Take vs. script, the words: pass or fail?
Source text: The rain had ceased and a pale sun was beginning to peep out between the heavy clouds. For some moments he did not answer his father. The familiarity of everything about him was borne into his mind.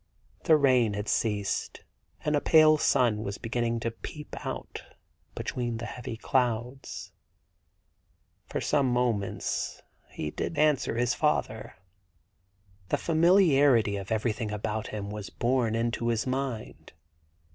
fail